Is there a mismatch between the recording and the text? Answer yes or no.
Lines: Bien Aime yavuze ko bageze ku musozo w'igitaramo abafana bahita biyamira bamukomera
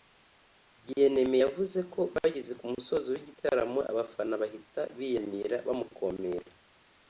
no